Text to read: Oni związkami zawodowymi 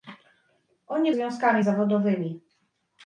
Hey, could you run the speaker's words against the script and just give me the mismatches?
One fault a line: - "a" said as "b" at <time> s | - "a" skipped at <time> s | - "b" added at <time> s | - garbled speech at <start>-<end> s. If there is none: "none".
none